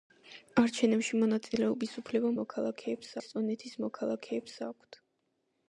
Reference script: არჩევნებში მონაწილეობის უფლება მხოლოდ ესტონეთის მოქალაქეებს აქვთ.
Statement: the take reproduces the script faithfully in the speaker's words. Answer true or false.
false